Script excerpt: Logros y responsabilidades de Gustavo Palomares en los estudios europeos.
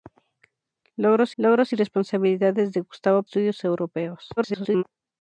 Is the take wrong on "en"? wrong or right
wrong